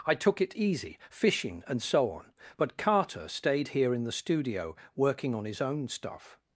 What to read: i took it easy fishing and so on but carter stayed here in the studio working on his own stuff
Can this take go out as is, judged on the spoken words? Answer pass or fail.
pass